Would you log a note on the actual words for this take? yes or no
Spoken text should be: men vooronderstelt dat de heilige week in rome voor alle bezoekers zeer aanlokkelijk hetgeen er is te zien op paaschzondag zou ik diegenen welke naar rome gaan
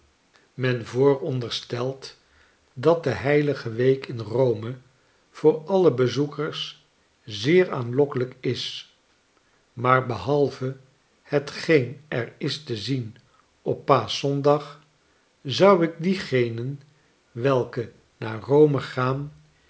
yes